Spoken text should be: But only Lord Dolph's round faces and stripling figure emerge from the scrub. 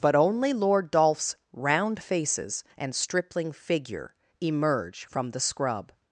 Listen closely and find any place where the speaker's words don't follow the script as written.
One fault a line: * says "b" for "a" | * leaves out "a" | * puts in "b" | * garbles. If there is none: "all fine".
all fine